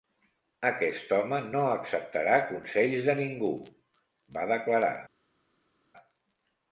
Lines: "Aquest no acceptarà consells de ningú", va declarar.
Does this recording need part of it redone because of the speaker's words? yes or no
yes